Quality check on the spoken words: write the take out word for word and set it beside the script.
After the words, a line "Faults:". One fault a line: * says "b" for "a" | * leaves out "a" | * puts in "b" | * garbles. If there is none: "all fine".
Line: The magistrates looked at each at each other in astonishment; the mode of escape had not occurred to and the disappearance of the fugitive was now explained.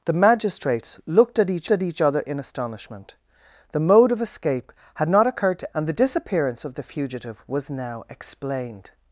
The magistrates looked at each at each other in astonishment; the mode of escape had not occurred to and the disappearance of the fugitive was now explained.
Faults:
all fine